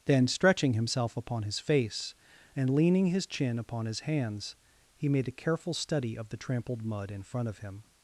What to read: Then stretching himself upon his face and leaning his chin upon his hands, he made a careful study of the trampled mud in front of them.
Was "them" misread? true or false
true